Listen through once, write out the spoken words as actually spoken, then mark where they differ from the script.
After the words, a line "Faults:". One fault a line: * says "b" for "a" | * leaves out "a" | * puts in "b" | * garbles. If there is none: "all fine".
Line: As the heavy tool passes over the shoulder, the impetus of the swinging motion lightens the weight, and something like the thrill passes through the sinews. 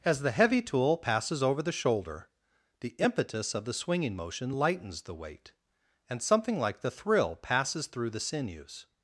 As the heavy tool passes over the shoulder, the impetus of the swinging motion lightens the weight, and something like the thrill passes through the sinews.
Faults:
all fine